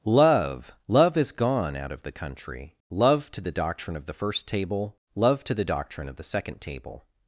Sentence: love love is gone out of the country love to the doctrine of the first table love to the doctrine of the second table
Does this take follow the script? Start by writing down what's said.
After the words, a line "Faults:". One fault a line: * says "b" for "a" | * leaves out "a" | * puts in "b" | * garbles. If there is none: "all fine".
love love is gone out of the country love to the doctrine of the first table love to the doctrine of the second table
Faults:
all fine